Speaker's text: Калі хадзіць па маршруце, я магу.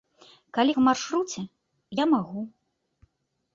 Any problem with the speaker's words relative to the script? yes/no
yes